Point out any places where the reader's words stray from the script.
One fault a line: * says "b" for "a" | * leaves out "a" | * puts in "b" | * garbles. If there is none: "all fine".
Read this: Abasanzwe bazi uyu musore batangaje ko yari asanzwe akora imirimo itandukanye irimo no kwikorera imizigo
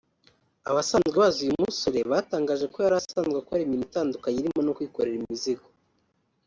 all fine